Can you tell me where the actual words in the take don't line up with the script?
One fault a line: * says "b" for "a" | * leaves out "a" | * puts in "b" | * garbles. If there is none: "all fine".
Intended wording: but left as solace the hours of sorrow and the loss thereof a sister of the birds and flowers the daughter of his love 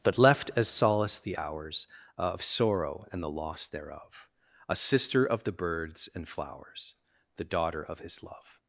all fine